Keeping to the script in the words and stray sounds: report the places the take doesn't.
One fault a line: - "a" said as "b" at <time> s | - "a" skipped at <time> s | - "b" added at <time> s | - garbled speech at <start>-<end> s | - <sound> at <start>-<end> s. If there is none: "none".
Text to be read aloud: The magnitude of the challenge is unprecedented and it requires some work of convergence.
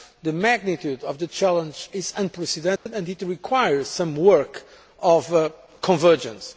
- dropout at 2.8-2.9 s